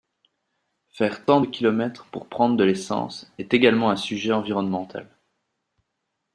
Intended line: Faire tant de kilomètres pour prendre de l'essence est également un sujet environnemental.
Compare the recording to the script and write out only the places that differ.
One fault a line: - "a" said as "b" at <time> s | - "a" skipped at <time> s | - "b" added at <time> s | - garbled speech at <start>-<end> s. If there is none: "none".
none